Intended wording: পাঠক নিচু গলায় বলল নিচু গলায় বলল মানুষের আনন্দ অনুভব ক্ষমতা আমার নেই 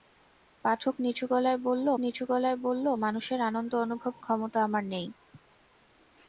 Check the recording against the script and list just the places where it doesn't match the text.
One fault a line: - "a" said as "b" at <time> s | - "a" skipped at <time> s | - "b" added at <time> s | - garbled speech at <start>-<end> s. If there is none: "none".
none